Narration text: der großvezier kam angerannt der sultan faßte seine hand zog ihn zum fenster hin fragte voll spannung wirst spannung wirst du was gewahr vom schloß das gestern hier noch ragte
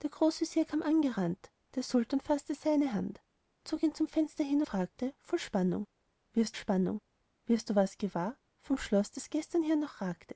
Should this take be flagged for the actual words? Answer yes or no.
no